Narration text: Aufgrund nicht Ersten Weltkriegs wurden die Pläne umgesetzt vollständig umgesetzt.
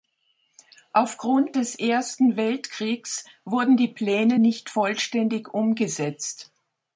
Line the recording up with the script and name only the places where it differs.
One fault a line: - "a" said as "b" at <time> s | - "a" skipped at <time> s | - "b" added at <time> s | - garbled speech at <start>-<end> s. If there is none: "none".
- "nicht" said as "des" at 1.5 s
- "umgesetzt" said as "nicht" at 4.4 s